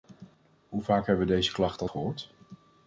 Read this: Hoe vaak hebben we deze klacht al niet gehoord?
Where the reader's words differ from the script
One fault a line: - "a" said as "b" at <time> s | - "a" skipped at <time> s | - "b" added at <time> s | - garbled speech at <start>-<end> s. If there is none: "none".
- "niet" skipped at 1.9 s